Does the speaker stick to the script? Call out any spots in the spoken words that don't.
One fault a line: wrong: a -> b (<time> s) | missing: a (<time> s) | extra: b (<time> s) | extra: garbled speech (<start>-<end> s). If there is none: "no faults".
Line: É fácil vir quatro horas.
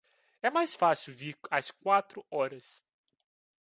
extra: mais (0.5 s)
extra: às (1.5 s)